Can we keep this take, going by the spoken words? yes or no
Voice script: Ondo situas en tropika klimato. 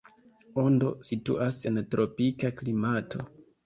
yes